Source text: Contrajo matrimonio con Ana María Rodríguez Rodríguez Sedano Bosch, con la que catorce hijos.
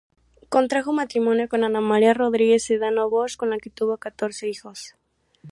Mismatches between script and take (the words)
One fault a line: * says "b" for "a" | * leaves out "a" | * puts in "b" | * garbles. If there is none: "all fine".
* leaves out "Rodríguez"
* puts in "tuvo"